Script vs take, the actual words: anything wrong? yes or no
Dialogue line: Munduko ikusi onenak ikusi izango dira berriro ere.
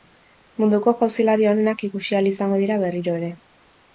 yes